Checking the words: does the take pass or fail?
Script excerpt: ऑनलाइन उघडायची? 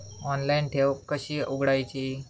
fail